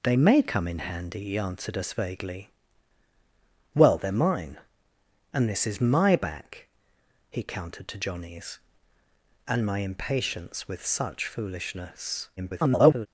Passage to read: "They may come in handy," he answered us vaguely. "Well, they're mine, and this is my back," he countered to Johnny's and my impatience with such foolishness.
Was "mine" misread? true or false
false